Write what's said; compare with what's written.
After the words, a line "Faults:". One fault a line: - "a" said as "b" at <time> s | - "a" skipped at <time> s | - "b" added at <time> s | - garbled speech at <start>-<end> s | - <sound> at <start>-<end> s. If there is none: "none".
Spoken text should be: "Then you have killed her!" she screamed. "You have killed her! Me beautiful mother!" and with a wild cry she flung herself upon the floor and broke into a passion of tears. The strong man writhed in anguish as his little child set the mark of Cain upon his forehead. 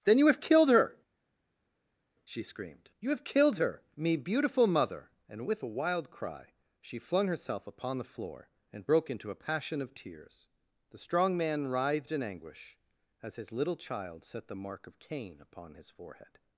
"Then you have killed her!" she screamed. "You have killed her! Me beautiful mother!" and with a wild cry she flung herself upon the floor and broke into a passion of tears. The strong man writhed in anguish as his little child set the mark of Cain upon his forehead.
Faults:
none